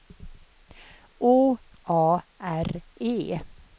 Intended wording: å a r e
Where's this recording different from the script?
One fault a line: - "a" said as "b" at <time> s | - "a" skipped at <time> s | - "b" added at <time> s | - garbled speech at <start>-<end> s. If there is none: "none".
none